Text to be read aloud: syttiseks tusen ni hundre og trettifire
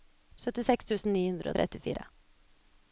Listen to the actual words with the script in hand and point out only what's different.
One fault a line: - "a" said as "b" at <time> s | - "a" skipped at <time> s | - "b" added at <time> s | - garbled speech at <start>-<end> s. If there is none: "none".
none